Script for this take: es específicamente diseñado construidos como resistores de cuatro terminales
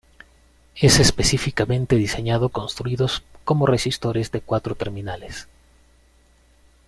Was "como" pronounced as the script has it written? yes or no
yes